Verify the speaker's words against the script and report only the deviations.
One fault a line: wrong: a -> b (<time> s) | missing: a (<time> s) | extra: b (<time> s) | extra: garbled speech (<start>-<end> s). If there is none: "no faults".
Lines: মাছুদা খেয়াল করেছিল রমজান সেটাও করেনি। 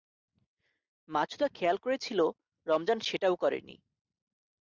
no faults